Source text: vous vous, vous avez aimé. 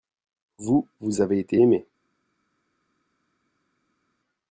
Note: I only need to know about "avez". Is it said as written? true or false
false